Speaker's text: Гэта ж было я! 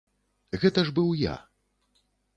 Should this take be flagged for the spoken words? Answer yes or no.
yes